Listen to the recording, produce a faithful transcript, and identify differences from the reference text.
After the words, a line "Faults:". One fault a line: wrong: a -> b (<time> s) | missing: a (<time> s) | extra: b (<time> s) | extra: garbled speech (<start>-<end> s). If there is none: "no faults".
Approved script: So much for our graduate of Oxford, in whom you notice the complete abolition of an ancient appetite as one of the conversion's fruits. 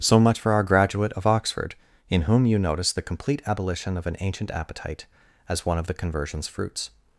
So much for our graduate of Oxford, in whom you notice the complete abolition of an ancient appetite as one of the conversion's fruits.
Faults:
no faults